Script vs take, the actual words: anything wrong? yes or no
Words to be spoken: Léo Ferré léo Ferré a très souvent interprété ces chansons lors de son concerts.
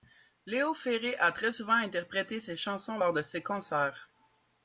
yes